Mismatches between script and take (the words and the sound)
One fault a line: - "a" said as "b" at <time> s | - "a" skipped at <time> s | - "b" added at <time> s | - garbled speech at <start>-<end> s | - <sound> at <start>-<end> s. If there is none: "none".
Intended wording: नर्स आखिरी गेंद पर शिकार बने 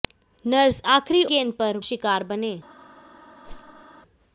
- whoosh at 3.4-3.8 s